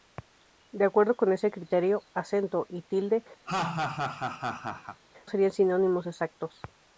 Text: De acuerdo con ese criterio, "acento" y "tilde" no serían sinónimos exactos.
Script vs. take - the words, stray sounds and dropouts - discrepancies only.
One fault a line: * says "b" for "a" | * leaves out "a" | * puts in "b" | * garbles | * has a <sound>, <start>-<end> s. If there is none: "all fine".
* leaves out "no"
* has a laugh, 3.5-5.0 s